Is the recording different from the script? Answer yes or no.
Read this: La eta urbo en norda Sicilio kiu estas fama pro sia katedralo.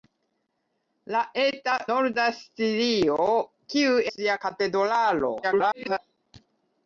yes